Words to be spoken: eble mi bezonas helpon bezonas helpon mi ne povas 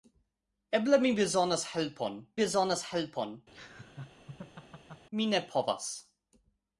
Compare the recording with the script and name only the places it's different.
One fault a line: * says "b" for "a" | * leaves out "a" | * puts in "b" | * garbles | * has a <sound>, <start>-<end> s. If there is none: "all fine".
* has a laugh, 3.5-5.1 s